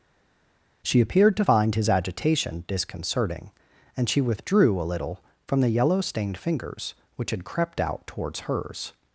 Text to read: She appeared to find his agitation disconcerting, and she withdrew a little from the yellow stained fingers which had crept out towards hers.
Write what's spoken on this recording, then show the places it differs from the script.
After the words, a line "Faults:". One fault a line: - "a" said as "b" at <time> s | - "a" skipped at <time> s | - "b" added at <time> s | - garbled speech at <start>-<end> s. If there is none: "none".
She appeared to find his agitation disconcerting, and she withdrew a little from the yellow stained fingers which had crept out towards hers.
Faults:
none